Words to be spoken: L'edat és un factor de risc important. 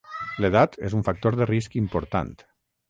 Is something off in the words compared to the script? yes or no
no